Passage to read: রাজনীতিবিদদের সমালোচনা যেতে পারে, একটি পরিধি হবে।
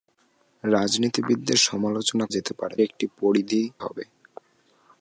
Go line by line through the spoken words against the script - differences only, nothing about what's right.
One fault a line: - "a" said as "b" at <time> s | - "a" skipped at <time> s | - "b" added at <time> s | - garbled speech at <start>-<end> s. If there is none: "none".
none